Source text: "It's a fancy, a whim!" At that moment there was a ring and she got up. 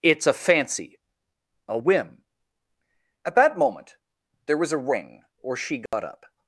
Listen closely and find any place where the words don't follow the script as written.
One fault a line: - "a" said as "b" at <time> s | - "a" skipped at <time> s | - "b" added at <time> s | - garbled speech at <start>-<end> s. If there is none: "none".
- "and" said as "or" at 5.4 s